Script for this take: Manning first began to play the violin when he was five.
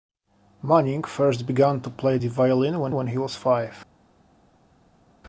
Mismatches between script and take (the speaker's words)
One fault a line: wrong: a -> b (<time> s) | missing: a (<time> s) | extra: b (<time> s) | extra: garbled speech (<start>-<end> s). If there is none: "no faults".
extra: when (2.9 s)